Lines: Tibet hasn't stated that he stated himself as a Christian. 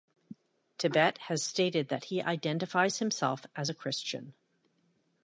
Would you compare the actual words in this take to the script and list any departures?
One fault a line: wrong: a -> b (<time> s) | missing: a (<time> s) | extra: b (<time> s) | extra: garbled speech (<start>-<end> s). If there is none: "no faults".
wrong: hasn't -> has (1.3 s)
wrong: stated -> identifies (2.2 s)